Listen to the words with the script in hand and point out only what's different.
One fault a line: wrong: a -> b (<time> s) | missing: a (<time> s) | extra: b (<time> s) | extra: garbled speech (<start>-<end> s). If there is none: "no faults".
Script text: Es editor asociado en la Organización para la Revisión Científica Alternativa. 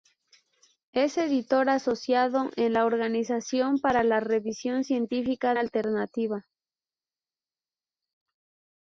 no faults